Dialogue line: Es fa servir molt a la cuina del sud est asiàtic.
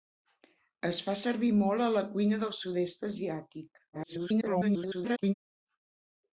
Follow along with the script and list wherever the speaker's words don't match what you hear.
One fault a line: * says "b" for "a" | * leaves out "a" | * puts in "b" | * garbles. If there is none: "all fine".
* garbles